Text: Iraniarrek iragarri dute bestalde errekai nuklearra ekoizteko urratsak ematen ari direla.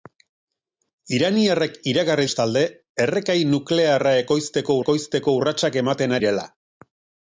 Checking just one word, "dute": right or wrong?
wrong